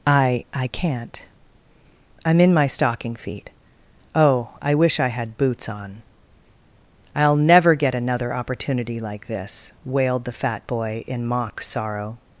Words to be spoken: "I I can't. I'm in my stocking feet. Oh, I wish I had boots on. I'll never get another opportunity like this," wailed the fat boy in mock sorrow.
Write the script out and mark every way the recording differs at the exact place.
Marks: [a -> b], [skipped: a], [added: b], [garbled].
"I I can't. I'm in my stocking feet. Oh, I wish I had boots on. I'll never get another opportunity like this," wailed the fat boy in mock sorrow.